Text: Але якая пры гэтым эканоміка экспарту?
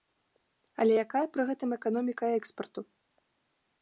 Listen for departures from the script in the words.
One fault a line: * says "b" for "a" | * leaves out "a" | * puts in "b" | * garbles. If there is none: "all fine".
all fine